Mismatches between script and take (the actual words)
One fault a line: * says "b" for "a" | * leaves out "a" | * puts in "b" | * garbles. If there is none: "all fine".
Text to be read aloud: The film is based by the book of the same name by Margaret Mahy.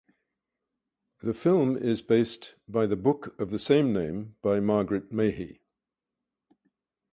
all fine